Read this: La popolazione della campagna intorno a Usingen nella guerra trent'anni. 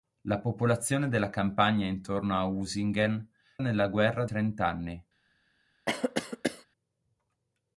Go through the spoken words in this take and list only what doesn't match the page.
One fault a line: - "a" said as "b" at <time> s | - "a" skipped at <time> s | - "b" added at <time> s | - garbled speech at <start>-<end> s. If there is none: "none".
none